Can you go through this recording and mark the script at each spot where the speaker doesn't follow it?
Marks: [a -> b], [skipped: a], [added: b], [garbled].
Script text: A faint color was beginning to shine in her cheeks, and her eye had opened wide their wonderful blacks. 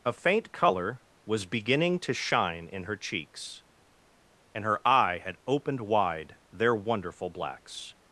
A faint color was beginning to shine in her cheeks, and her eye had opened wide their wonderful blacks.